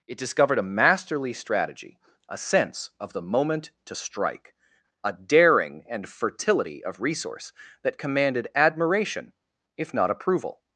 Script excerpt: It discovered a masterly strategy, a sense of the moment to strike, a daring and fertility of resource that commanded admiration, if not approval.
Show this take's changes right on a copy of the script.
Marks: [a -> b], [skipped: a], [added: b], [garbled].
It discovered a masterly strategy, a sense of the moment to strike, a daring and fertility of resource that commanded admiration, if not approval.